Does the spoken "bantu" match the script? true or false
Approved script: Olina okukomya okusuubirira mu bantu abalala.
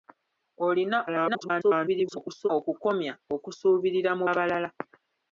false